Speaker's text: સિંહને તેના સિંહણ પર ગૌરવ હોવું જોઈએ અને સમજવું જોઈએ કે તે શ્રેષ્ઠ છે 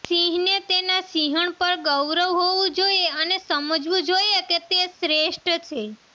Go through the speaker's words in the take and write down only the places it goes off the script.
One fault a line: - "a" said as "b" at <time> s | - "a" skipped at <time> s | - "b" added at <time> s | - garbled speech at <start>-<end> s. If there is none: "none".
none